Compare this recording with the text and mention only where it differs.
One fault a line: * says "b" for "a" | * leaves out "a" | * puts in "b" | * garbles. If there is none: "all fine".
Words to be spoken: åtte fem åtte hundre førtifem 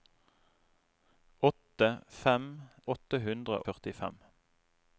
all fine